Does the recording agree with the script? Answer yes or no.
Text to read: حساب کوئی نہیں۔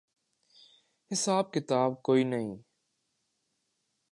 no